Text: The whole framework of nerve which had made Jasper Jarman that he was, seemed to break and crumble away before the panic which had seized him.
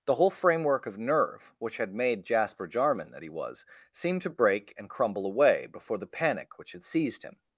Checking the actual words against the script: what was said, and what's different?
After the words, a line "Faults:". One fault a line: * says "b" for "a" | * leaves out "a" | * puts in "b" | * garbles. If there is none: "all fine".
The whole framework of nerve which had made Jasper Jarman that he was, seemed to break and crumble away before the panic which had seized him.
Faults:
all fine